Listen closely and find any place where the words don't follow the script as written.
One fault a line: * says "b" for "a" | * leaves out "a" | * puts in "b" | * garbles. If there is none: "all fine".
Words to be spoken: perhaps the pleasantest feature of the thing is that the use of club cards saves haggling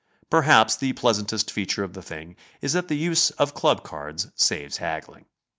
all fine